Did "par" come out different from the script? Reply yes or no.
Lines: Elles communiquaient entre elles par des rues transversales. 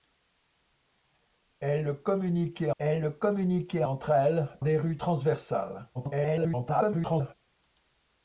yes